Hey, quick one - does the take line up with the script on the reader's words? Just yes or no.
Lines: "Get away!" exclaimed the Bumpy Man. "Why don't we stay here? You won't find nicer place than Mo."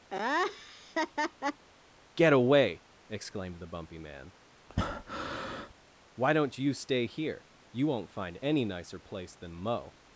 no